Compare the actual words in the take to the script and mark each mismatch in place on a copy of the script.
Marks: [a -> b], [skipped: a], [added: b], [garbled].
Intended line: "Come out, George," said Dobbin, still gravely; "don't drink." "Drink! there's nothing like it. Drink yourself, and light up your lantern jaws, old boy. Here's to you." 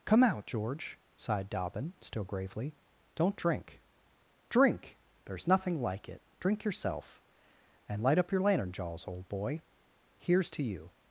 "Come out, George," [said -> sighed] Dobbin, still gravely; "don't drink." "Drink! there's nothing like it. Drink yourself, and light up your lantern jaws, old boy. Here's to you."